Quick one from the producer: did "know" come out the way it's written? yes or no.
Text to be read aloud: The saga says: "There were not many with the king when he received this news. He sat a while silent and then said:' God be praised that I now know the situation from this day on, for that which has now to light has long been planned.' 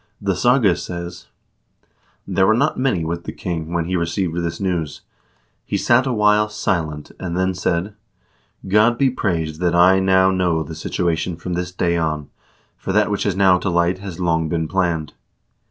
yes